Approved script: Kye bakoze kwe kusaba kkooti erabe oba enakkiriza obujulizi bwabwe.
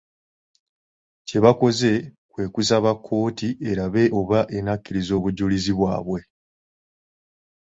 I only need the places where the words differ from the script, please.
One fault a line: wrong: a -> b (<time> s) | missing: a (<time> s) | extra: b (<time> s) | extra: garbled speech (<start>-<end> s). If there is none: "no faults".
no faults